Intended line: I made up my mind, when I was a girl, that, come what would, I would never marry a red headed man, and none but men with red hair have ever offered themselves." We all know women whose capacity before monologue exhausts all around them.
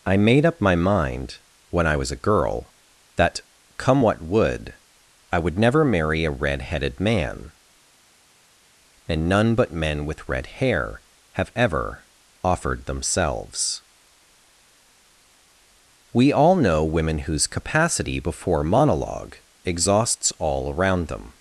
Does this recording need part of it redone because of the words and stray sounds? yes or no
no